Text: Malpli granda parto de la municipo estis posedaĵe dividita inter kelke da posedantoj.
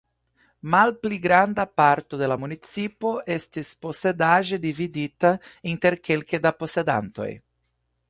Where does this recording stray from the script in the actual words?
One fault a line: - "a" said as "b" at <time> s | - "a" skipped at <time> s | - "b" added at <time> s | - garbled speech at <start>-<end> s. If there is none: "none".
none